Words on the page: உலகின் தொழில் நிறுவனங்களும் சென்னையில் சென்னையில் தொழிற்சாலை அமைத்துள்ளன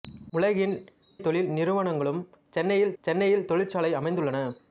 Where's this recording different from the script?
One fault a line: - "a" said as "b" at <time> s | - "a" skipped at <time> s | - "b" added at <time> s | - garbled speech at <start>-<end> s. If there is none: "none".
none